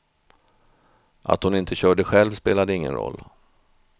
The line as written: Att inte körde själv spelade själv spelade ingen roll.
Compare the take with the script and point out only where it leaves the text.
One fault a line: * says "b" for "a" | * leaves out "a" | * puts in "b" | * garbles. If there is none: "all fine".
* puts in "hon"
* leaves out "själv spelade"